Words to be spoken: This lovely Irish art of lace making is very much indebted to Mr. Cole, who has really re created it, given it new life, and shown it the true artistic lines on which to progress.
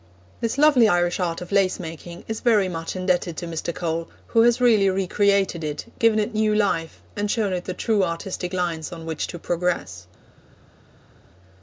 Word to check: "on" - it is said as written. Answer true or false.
true